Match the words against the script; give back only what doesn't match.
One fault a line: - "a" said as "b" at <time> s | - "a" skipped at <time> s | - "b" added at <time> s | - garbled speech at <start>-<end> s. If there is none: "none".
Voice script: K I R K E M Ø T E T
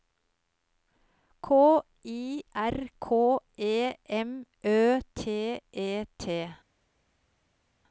none